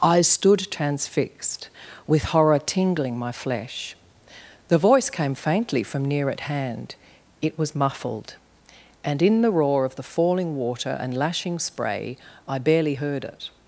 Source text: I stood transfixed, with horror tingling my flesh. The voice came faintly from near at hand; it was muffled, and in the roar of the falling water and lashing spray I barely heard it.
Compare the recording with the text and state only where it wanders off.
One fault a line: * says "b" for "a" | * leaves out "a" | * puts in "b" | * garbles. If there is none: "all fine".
all fine